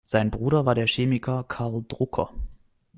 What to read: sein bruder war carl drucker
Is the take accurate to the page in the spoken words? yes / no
no